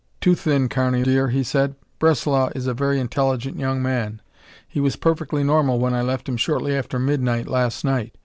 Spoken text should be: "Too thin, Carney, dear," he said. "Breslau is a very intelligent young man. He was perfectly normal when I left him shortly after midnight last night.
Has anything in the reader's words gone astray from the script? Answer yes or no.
no